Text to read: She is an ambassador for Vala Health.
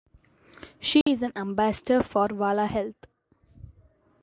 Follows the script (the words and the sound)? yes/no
no